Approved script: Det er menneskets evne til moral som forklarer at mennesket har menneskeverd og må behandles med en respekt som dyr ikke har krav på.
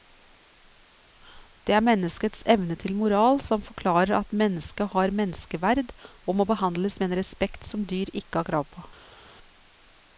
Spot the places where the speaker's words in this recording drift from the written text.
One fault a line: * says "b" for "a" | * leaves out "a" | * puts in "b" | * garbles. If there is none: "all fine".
all fine